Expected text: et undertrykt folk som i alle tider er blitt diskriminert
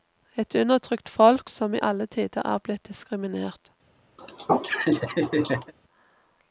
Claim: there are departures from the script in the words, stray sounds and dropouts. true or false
true